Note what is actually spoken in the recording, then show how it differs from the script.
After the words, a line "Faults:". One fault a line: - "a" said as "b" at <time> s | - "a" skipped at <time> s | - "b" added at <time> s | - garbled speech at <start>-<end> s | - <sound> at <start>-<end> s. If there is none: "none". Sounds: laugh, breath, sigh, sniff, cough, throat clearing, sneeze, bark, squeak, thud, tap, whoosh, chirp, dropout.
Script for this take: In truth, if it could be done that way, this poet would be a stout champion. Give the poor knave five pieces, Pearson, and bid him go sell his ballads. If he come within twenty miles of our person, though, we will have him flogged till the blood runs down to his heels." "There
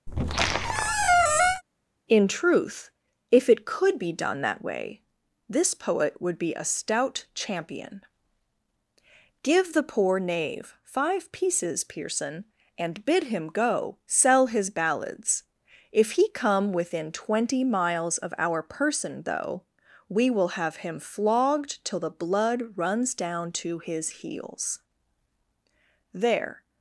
In truth, if it could be done that way, this poet would be a stout champion. Give the poor knave five pieces, Pearson, and bid him go sell his ballads. If he come within twenty miles of our person, though, we will have him flogged till the blood runs down to his heels." "There
Faults:
- squeak at 0.1-1.6 s